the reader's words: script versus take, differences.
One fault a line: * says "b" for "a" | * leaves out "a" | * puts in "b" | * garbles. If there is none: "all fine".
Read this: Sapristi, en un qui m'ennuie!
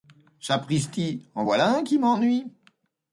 * puts in "voilà"